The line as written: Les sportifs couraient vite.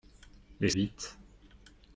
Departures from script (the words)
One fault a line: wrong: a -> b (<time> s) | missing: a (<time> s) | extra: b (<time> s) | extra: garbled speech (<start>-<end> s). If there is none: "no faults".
missing: sportifs couraient (0.7 s)